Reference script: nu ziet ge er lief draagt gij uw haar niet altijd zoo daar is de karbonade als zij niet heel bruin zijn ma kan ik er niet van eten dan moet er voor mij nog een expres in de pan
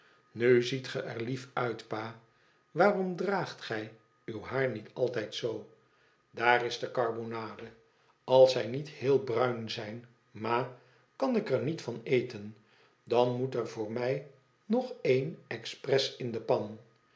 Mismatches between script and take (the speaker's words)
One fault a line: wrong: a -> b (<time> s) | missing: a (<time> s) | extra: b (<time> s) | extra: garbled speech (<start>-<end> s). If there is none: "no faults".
extra: uit pa waarom (1.5 s)